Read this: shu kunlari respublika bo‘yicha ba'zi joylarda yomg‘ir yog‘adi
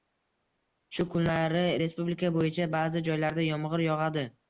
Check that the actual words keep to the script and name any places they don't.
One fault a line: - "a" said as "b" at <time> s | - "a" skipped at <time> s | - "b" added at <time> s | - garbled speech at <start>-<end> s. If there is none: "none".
none